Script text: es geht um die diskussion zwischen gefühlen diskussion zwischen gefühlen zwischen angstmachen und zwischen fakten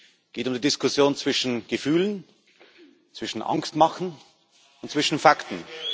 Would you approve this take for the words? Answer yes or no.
no